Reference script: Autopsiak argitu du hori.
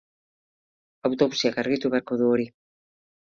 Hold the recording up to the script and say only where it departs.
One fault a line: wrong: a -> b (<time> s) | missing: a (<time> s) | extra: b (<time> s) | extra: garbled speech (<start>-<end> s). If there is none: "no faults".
extra: beharko (1.9 s)